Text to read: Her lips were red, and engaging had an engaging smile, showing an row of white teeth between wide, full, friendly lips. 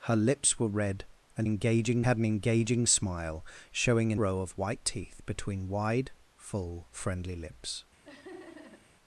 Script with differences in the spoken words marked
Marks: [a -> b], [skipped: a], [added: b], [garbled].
Her lips were red, and engaging had an engaging smile, showing an row of white teeth between wide, full, friendly lips.